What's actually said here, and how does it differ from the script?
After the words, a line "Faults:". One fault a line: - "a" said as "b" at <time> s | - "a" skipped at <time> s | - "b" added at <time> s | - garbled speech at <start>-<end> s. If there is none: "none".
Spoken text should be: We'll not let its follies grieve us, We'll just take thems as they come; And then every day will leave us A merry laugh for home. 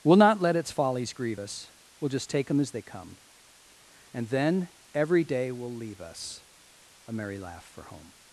We'll not let its follies grieve us, We'll just take them as they come; And then every day will leave us A merry laugh for home.
Faults:
- "thems" said as "them" at 2.5 s